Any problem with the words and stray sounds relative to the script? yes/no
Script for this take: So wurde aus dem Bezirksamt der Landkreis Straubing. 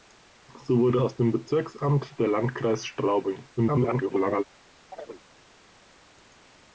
yes